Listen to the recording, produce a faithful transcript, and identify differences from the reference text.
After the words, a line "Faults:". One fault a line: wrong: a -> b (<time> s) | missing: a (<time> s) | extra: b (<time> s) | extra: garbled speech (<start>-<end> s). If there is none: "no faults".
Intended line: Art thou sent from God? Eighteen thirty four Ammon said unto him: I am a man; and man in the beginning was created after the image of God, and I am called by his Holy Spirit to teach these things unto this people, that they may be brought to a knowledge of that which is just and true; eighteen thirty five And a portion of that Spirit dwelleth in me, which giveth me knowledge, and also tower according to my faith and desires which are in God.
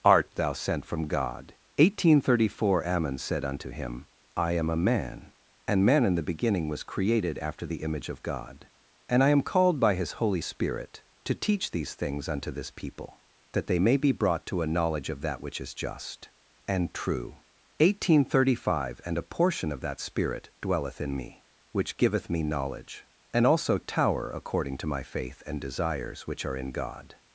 Art thou sent from God? Eighteen thirty four Ammon said unto him: I am a man; and man in the beginning was created after the image of God, and I am called by his Holy Spirit to teach these things unto this people, that they may be brought to a knowledge of that which is just and true; eighteen thirty five And a portion of that Spirit dwelleth in me, which giveth me knowledge, and also tower according to my faith and desires which are in God.
Faults:
no faults